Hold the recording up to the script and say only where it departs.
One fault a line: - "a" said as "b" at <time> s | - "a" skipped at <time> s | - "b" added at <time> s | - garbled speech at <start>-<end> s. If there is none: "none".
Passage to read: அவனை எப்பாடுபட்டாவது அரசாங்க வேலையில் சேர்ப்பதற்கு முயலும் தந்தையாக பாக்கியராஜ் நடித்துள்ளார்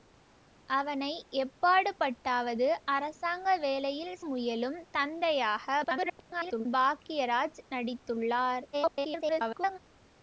- "சேர்ப்பதற்கு" skipped at 4.2 s
- garbled speech at 5.8-6.7 s
- garbled speech at 8.7-9.8 s